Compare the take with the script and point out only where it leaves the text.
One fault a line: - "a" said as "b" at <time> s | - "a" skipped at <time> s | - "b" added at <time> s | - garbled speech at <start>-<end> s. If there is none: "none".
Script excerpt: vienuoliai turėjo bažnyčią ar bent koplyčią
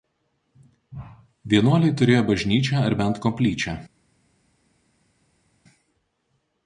none